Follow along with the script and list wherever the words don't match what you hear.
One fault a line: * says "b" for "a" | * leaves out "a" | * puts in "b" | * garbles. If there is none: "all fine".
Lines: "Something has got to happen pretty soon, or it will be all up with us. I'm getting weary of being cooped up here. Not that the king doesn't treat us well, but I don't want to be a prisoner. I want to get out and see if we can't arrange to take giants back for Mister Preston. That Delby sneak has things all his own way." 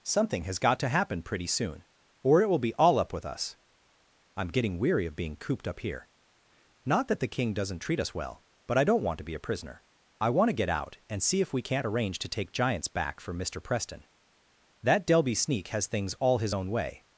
all fine